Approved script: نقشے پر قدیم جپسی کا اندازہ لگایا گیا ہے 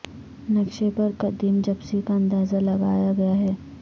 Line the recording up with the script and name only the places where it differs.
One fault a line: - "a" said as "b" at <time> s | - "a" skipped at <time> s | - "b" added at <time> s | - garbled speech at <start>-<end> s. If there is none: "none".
none